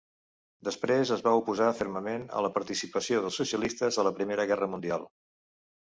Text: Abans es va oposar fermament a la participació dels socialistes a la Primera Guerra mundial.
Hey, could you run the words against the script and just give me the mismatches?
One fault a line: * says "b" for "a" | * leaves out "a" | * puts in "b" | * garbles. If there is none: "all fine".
* says "Després" for "Abans"